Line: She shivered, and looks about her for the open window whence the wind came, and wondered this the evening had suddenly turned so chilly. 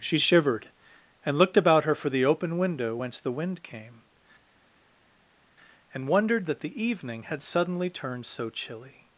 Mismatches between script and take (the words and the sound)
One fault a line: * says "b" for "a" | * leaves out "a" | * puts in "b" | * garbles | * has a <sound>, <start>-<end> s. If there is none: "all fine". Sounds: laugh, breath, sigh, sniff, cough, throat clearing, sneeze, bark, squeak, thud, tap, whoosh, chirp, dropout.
* says "looked" for "looks"
* says "that" for "this"